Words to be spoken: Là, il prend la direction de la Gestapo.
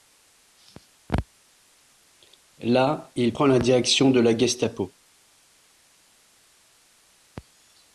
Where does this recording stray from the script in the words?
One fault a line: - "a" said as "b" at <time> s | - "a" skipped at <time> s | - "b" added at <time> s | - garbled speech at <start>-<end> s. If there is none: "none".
none